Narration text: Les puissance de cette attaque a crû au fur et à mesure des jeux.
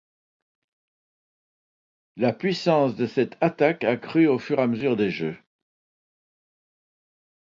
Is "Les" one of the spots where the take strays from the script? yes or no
yes